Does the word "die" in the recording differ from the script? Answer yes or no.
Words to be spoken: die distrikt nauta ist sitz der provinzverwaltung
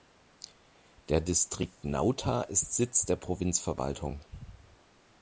yes